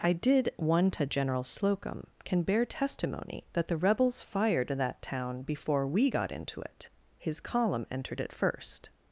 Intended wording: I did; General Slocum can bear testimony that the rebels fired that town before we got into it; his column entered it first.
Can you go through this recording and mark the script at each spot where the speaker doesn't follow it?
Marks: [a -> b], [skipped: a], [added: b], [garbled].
I did; [added: one to] General Slocum can bear testimony that the rebels fired that town before we got into it; his column entered it first.